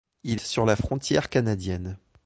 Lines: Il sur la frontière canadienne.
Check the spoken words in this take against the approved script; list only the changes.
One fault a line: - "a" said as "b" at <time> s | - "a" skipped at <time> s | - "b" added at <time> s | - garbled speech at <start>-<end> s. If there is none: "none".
none